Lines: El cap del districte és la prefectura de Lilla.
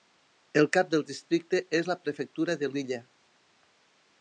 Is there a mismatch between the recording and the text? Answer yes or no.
no